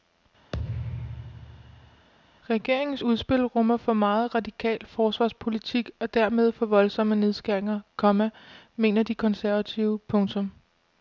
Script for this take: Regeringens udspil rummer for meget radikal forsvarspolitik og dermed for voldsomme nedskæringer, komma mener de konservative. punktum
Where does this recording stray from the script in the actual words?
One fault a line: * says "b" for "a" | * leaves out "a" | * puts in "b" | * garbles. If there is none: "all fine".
all fine